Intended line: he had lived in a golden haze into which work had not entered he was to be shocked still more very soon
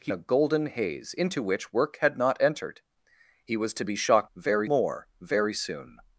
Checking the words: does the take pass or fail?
fail